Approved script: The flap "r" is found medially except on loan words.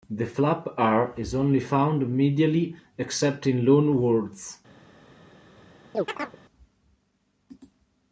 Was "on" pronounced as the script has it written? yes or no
no